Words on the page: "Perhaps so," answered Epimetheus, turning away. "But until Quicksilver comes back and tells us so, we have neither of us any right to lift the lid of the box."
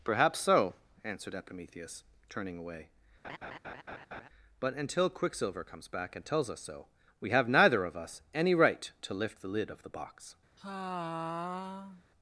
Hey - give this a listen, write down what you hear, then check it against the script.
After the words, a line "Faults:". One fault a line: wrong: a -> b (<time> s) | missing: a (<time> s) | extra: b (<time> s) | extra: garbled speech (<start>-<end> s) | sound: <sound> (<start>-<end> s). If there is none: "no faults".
"Perhaps so," answered Epimetheus, turning away. "But until Quicksilver comes back and tells us so, we have neither of us any right to lift the lid of the box."
Faults:
sound: laugh (3.2-4.3 s)
sound: sigh (10.6-12.0 s)